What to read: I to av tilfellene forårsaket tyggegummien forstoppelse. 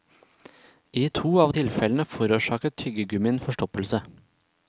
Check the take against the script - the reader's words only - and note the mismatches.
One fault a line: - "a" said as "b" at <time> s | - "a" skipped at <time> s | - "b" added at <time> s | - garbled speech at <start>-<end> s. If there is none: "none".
none